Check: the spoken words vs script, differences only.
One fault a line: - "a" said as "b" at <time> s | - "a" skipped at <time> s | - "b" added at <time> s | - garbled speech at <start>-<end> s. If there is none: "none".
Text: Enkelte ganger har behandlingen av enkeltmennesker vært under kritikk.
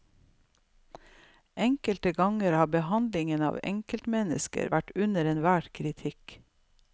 - "enhver" added at 5.3 s